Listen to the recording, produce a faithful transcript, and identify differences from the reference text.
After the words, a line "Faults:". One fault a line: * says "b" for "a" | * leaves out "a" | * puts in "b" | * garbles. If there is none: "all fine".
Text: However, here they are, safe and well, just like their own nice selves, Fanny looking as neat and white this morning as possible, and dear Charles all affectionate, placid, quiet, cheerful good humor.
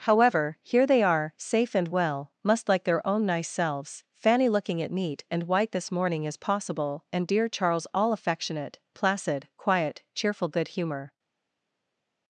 However, here they are, safe and well, must like their own nice selves, Fanny looking at neat and white this morning as possible, and dear Charles all affectionate, placid, quiet, cheerful good humor.
Faults:
* says "must" for "just"
* says "at" for "as"